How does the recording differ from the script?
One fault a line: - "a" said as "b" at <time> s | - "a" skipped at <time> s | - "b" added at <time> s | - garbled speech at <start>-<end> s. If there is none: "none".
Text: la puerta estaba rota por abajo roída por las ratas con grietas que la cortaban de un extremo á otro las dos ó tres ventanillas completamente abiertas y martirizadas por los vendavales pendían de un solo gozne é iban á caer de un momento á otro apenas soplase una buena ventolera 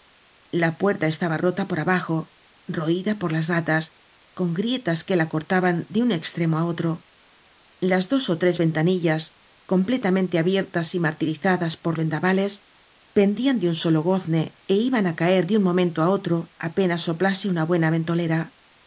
- "los" skipped at 11.9 s